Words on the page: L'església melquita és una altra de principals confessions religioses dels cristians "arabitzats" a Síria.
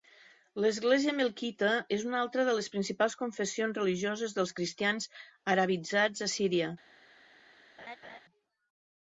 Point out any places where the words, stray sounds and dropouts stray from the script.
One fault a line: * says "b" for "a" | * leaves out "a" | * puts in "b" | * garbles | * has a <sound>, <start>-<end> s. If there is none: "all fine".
* puts in "les"
* has a laugh, 7.8-8.2 s